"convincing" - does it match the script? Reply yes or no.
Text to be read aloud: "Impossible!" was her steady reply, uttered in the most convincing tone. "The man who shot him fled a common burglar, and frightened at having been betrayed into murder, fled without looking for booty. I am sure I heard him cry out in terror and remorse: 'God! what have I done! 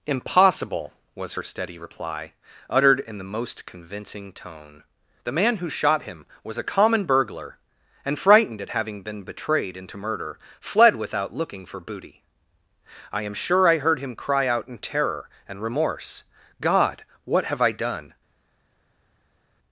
yes